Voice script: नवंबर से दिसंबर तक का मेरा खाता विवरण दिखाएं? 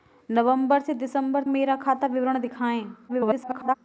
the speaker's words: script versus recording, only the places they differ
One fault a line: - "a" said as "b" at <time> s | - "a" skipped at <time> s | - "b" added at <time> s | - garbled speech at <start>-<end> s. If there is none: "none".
- "तक का" skipped at 1.4 s
- garbled speech at 3.1-3.7 s